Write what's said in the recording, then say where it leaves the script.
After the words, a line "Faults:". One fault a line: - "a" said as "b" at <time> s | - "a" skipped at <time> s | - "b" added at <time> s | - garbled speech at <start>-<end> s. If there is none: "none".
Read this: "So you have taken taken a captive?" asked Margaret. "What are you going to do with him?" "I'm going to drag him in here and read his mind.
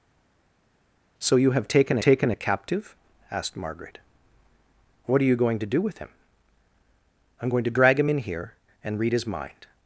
"So you have taken taken a captive?" asked Margaret. "What are you going to do with him?" "I'm going to drag him in here and read his mind.
Faults:
none